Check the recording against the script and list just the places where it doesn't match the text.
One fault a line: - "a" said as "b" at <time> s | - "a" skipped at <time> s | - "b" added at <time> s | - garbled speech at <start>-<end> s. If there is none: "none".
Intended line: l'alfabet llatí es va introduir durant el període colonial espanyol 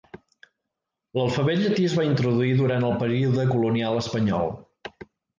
none